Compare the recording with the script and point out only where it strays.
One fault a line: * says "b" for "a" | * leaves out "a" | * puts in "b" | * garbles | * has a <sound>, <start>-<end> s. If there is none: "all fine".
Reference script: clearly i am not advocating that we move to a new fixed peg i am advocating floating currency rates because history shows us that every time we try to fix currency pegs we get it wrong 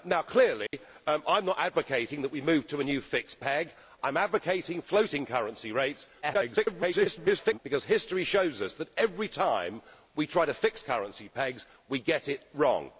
* has a dropout, 0.7-0.7 s
* garbles